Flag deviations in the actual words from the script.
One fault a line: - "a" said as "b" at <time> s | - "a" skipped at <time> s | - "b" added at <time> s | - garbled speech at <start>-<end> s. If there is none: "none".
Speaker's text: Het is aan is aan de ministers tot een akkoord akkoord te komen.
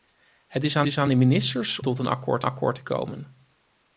none